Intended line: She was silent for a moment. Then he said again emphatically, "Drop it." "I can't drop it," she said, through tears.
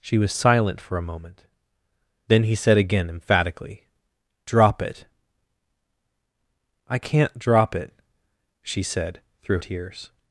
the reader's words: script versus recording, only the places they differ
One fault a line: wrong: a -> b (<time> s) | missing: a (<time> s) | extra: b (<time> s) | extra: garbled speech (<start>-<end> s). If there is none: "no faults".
no faults